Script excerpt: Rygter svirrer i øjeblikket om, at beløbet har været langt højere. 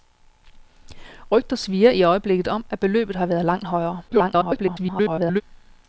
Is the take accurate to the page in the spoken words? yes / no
no